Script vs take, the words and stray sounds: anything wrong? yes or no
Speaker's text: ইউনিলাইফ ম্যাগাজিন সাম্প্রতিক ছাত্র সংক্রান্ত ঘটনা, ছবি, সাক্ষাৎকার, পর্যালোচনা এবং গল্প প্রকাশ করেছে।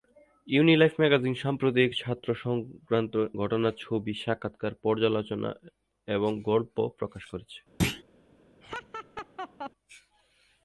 yes